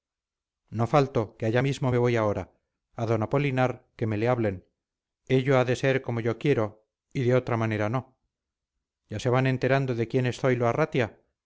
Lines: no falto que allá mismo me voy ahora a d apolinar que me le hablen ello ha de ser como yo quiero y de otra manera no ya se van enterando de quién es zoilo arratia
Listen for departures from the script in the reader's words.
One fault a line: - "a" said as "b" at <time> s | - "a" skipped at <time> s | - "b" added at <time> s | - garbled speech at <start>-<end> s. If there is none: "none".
none